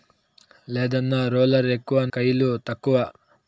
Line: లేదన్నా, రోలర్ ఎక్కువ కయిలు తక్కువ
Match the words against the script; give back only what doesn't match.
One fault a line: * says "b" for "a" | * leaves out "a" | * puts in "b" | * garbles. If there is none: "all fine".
all fine